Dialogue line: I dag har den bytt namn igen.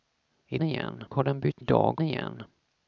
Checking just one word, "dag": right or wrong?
wrong